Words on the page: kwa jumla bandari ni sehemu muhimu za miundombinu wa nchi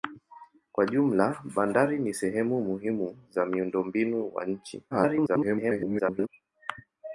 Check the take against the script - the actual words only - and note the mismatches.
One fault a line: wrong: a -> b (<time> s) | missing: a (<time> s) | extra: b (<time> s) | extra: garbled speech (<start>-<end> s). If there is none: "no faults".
extra: garbled speech (4.9-6.3 s)